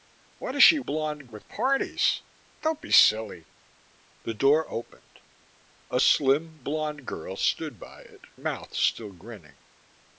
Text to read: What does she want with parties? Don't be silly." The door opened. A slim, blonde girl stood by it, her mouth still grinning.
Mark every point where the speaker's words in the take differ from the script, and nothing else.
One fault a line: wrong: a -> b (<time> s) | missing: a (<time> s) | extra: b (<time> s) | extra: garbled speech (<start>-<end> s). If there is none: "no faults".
wrong: want -> blonde (0.8 s)
missing: her (8.2 s)